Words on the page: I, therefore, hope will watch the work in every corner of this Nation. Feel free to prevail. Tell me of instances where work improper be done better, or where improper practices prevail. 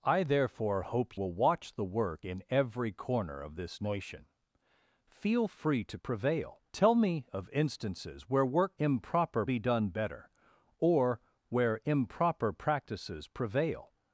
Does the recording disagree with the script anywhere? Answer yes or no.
no